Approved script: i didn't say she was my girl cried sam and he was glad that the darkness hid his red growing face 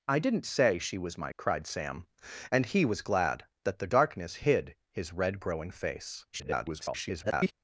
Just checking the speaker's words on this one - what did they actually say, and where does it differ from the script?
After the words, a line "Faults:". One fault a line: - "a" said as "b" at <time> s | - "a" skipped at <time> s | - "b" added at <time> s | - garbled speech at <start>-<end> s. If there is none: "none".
i didn't say she was my cried sam and he was glad that the darkness hid his red growing face [garbled]
Faults:
- "girl" skipped at 1.3 s
- garbled speech at 6.3-7.5 s